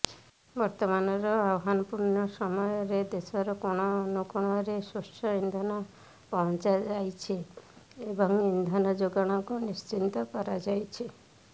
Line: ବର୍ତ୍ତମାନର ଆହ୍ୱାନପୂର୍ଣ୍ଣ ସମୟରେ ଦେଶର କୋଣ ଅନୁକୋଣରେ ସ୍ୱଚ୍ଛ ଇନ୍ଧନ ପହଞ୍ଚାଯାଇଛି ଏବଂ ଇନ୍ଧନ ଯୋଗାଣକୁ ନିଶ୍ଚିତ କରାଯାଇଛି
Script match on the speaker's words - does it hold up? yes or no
yes